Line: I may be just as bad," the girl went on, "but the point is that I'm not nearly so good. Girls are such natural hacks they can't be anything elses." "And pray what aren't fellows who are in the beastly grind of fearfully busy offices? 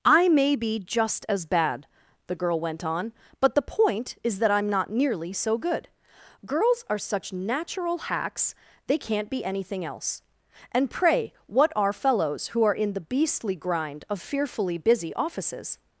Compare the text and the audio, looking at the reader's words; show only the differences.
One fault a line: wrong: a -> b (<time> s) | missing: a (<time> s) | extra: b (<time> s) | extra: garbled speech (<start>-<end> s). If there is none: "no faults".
wrong: elses -> else (9.8 s)
wrong: aren't -> are (11.8 s)